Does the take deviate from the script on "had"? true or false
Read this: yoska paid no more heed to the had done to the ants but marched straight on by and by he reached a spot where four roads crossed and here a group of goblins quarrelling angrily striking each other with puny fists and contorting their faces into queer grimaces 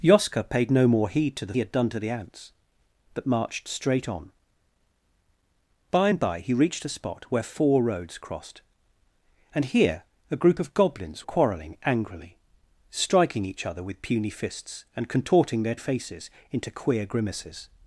false